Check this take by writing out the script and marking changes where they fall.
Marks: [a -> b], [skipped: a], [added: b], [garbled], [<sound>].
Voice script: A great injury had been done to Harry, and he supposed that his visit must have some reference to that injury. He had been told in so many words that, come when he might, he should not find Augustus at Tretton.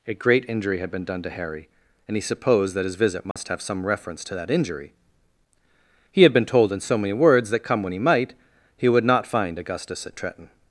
A great injury had been done to Harry, and he supposed that his visit must [dropout] have some reference to that injury. He had been told in so many words that, come when he might, he [should -> would] not find Augustus at Tretton.